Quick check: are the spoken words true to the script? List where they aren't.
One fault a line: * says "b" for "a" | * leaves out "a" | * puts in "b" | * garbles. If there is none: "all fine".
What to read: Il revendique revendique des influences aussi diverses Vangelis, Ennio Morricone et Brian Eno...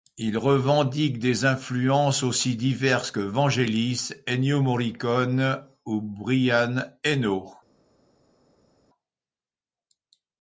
* leaves out "revendique"
* puts in "que"
* says "ou" for "et"